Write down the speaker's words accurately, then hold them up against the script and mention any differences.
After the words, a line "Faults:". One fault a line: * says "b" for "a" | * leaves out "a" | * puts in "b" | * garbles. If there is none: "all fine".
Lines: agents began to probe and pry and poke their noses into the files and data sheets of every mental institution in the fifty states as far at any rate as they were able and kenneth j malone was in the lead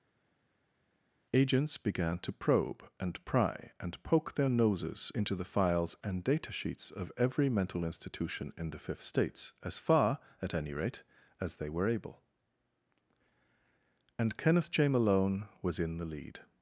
agents began to probe and pry and poke their noses into the files and data sheets of every mental institution in the fifth states as far at any rate as they were able and kenneth j malone was in the lead
Faults:
* says "fifth" for "fifty"